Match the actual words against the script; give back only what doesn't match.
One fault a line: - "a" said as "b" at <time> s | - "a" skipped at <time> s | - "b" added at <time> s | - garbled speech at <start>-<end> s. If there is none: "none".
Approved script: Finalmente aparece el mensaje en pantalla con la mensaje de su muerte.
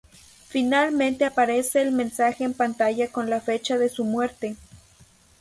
- "mensaje" said as "fecha" at 3.4 s